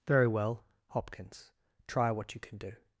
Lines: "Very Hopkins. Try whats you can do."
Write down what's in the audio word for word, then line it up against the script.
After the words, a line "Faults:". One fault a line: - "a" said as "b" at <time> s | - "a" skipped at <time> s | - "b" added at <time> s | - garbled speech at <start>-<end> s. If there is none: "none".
"Very well, Hopkins. Try what you can do."
Faults:
- "well" added at 0.3 s
- "whats" said as "what" at 2.1 s